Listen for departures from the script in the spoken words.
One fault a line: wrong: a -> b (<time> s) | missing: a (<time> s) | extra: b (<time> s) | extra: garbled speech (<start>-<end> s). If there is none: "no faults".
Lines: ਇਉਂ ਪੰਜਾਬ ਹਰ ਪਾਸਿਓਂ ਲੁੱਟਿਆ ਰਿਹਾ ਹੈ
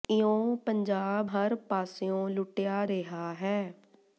no faults